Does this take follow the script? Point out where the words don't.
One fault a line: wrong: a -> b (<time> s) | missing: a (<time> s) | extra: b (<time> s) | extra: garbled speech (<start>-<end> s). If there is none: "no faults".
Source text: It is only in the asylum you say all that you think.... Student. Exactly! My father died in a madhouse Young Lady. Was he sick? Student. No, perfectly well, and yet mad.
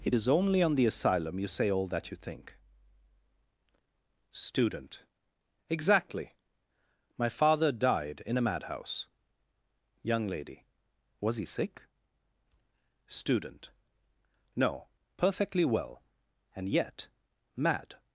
wrong: in -> on (0.6 s)